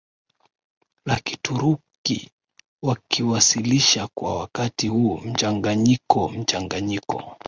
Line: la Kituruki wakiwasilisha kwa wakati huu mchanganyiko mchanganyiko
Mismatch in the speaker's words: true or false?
false